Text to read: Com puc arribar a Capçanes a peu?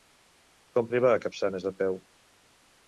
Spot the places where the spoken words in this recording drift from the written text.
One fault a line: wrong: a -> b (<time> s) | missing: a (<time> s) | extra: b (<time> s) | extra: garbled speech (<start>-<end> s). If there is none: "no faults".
missing: puc (0.9 s)